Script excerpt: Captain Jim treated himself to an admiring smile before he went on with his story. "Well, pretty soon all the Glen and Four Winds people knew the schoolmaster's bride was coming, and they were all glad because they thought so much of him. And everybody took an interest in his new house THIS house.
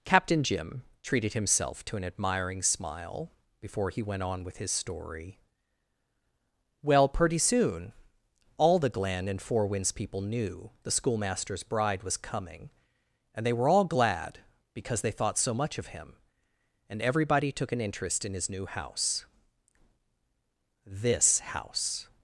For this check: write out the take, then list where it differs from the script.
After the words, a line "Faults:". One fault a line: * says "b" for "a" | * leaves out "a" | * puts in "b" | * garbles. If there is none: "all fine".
Captain Jim treated himself to an admiring smile before he went on with his story. "Well, pretty soon all the Glen and Four Winds people knew the schoolmaster's bride was coming, and they were all glad because they thought so much of him. And everybody took an interest in his new house THIS house.
Faults:
all fine